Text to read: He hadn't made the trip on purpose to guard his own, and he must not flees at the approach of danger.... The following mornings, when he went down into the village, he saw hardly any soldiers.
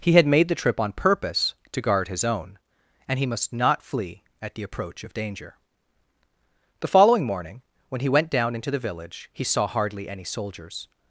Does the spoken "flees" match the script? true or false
false